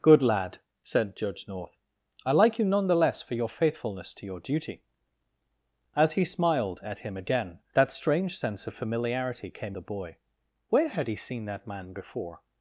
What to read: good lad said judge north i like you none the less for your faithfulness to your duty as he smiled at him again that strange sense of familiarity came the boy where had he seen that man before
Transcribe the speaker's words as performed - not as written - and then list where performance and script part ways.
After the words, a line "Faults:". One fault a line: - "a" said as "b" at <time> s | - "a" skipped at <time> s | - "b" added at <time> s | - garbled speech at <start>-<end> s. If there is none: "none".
good lad said judge north i like you none the less for your faithfulness to your duty as he smiled at him again that strange sense of familiarity came the boy where had he seen that man before
Faults:
none